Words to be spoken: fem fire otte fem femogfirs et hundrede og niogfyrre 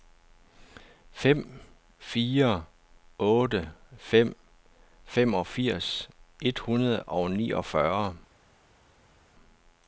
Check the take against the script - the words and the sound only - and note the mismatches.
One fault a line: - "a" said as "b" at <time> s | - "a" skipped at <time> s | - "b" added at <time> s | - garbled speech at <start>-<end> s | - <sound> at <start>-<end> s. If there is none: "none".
none